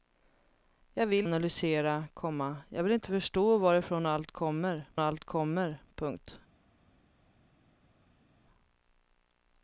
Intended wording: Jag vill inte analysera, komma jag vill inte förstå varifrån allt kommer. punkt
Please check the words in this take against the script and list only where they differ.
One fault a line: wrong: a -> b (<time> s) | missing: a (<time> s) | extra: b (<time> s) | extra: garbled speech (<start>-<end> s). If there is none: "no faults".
missing: inte (1.3 s)
extra: allt kommer (5.0 s)